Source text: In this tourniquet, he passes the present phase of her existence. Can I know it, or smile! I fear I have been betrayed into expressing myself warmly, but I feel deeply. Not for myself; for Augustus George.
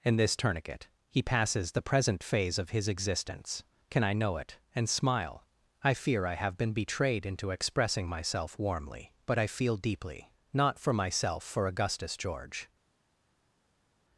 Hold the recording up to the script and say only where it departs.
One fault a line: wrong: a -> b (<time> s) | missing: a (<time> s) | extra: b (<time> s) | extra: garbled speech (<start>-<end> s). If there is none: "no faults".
wrong: her -> his (2.7 s)
wrong: or -> and (4.7 s)